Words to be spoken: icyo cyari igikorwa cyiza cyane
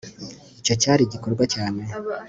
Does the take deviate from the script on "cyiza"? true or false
true